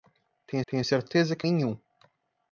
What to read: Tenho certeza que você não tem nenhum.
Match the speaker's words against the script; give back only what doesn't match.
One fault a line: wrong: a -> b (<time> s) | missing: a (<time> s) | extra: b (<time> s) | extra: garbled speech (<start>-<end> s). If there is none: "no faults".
extra: tenho (0.7 s)
missing: você não tem (1.5 s)